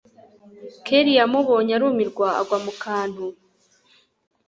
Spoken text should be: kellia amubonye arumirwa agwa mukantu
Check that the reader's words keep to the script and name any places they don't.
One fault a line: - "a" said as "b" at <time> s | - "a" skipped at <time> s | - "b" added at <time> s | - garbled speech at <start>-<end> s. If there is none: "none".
none